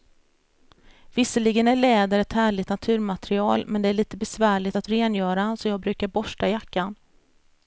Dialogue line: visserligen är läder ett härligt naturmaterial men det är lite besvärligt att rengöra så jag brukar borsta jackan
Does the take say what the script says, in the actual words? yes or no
yes